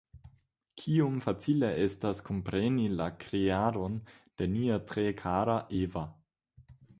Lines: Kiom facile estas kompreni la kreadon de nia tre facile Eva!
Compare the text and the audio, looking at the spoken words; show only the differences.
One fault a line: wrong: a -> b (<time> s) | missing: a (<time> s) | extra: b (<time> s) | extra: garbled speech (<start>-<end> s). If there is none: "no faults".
wrong: facile -> kara (5.2 s)